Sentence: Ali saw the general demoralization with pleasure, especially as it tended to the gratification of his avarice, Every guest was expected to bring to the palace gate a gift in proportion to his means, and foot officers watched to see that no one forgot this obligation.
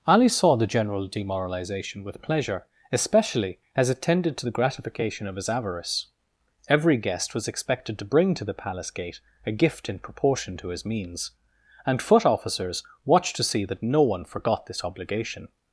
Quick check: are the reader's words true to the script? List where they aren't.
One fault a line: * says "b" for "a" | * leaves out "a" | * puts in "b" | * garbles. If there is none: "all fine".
all fine